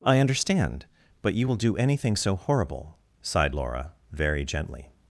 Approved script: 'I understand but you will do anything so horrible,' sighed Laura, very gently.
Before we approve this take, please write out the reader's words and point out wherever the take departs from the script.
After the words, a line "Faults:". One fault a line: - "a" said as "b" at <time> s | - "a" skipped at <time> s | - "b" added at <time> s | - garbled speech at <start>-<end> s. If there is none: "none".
'I understand but you will do anything so horrible,' sighed Laura, very gently.
Faults:
none